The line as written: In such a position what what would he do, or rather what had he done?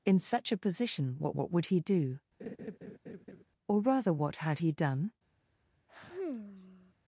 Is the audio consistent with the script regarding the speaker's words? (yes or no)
yes